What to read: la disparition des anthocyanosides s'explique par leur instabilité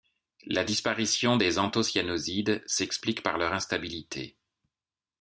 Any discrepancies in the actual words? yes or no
no